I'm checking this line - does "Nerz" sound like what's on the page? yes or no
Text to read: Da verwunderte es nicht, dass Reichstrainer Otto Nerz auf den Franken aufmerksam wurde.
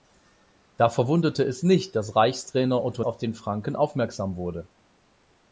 no